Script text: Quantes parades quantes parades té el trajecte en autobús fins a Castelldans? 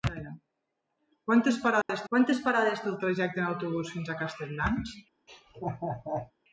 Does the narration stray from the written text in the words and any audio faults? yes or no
yes